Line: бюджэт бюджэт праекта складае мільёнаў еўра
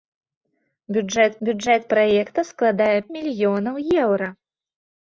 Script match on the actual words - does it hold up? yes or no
yes